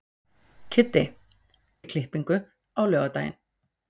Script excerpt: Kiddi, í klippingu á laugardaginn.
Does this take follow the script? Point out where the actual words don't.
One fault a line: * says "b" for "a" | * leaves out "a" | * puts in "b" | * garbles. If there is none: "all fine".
all fine